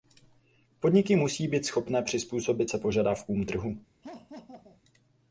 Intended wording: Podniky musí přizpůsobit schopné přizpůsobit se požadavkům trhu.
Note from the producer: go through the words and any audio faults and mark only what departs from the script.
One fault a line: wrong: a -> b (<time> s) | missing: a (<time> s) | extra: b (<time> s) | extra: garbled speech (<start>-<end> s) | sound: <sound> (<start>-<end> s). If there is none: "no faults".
wrong: přizpůsobit -> být (1.5 s)
sound: laugh (4.0-4.8 s)